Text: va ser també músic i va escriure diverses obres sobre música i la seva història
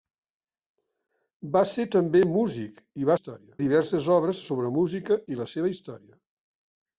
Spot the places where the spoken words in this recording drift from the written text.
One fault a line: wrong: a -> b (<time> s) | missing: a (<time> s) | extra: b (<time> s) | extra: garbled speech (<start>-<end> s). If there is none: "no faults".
wrong: escriure -> història (3.2 s)